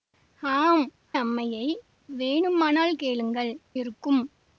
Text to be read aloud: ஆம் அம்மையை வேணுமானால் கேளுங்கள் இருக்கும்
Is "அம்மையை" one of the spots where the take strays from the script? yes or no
no